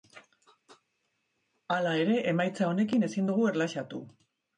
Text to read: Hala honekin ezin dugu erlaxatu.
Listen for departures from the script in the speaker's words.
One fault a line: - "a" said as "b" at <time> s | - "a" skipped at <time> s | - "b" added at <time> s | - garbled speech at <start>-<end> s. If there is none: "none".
- "ere emaitza" added at 2.0 s